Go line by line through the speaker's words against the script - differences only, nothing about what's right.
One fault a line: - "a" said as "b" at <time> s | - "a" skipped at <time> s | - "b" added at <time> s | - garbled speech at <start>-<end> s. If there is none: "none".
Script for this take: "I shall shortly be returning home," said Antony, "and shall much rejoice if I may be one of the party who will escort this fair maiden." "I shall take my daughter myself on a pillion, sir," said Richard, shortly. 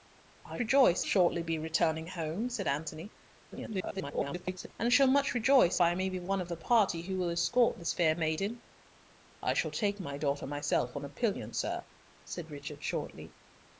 - "shall" said as "rejoice" at 0.6 s
- garbled speech at 3.5-4.7 s
- "if" skipped at 5.8 s